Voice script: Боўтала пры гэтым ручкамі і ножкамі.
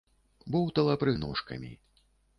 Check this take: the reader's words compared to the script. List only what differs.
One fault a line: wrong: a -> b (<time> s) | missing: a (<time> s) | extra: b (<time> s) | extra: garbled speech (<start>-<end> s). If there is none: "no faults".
missing: гэтым ручкамі (1.1 s)